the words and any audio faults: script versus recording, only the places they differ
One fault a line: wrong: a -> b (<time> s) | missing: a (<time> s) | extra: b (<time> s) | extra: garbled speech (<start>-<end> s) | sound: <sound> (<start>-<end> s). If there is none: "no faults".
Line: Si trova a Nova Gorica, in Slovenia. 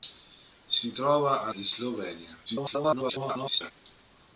missing: Nova Gorica (1.5 s)
extra: garbled speech (2.5-3.7 s)